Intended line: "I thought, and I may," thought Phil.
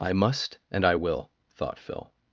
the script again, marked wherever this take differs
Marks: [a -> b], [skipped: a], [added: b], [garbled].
"I [thought, -> must] and I [may," -> will] thought Phil.